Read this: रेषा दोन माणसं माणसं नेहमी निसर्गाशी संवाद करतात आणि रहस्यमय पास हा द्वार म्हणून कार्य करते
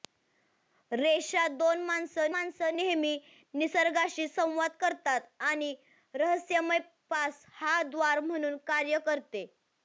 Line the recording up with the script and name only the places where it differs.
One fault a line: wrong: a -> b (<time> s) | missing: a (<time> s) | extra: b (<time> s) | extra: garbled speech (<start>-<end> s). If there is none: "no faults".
no faults